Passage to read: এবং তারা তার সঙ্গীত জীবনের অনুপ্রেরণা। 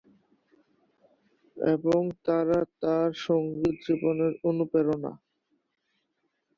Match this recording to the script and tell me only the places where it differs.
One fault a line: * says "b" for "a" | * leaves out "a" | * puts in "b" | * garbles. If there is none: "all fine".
all fine